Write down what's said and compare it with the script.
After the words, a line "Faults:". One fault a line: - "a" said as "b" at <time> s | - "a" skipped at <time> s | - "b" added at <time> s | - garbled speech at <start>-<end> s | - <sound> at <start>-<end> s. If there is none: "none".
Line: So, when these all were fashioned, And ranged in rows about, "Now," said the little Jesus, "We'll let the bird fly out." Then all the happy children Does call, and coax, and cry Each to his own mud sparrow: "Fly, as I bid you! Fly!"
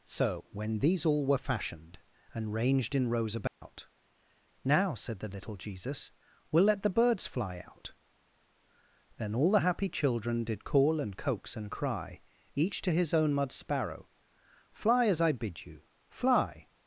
So, when these all were fashioned, And ranged in rows about, "Now," said the little Jesus, "We'll let the birds fly out." Then all the happy children Did call, and coax, and cry Each to his own mud sparrow: "Fly, as I bid you! Fly!"
Faults:
- dropout at 3.5-3.6 s
- "bird" said as "birds" at 7.0 s
- "Does" said as "Did" at 10.4 s